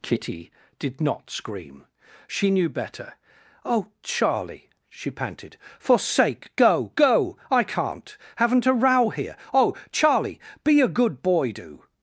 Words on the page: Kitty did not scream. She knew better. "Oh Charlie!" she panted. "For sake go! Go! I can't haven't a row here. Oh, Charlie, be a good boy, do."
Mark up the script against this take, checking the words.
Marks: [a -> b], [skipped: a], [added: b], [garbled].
Kitty did not scream. She knew better. "Oh Charlie!" she panted. "For sake go! Go! I can't haven't a row here. Oh, Charlie, be a good boy, do."